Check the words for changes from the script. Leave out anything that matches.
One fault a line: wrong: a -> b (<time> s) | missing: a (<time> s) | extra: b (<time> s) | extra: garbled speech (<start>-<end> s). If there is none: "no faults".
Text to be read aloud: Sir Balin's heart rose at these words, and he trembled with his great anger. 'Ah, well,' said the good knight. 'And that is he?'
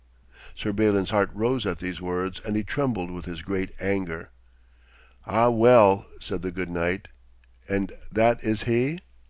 no faults